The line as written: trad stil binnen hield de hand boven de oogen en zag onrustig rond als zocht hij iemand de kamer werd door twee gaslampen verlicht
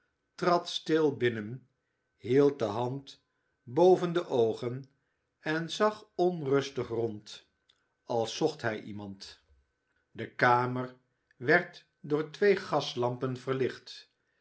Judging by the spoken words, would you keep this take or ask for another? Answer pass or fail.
pass